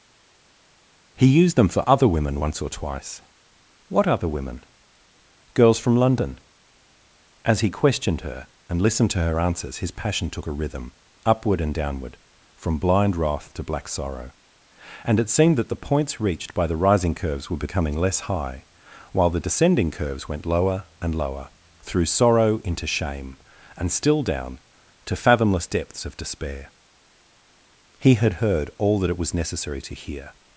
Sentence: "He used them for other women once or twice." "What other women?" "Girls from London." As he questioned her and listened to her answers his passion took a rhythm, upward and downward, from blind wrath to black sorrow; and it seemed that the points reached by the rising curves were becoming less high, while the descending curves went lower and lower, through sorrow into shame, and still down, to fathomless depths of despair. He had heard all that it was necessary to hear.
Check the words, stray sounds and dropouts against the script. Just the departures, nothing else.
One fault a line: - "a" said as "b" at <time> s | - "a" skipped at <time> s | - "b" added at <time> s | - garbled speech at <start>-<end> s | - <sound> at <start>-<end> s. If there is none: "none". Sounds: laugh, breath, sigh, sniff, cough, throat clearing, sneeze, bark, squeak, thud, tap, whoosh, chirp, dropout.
none